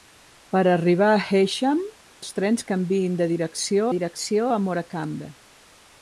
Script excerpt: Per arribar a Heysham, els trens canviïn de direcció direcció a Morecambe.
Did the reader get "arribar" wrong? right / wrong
right